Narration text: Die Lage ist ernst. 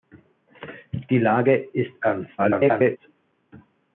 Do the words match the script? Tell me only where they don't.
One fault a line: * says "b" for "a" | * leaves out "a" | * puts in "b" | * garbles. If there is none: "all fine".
* garbles